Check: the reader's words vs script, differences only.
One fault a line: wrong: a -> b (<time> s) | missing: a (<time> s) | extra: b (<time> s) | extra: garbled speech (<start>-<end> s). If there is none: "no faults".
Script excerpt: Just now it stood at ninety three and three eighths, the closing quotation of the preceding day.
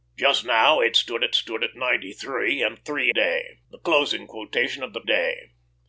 extra: stood at (1.3 s)
wrong: eighths -> day (3.1 s)
missing: preceding (5.0 s)